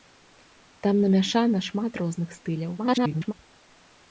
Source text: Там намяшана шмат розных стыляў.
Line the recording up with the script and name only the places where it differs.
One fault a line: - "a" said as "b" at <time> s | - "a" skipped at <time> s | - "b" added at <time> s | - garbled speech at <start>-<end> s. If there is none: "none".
- garbled speech at 2.8-3.3 s